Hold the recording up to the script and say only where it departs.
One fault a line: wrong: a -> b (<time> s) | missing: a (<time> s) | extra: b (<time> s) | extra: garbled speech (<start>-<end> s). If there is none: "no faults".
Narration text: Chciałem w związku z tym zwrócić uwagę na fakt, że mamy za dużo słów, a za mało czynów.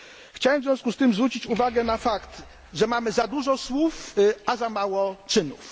no faults